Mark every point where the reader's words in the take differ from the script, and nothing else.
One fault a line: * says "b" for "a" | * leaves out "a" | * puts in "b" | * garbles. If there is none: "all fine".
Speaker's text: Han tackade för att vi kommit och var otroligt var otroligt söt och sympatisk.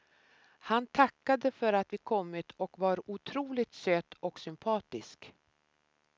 * leaves out "var otroligt"